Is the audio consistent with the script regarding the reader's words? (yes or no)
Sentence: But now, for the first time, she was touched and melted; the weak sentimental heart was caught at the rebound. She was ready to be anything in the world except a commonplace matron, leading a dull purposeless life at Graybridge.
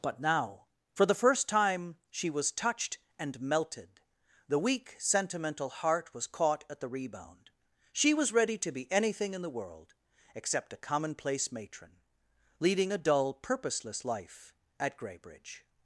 yes